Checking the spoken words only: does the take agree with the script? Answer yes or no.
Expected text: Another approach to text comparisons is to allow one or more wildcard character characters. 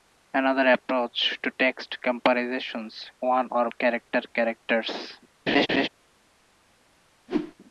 no